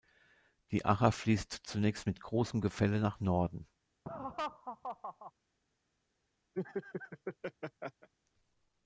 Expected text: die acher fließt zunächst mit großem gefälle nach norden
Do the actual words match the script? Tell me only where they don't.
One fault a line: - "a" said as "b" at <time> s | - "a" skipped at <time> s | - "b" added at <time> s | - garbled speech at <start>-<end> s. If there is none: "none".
none